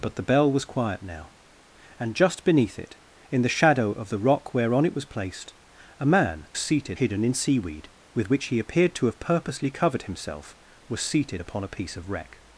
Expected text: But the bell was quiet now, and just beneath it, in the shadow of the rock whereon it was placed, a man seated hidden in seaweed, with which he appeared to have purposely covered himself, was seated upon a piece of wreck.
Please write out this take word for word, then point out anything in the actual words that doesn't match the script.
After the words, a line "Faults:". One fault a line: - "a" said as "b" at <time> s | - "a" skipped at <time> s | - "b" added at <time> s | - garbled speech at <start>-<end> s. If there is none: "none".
But the bell was quiet now, and just beneath it, in the shadow of the rock whereon it was placed, a man seated hidden in seaweed, with which he appeared to have purposely covered himself, was seated upon a piece of wreck.
Faults:
none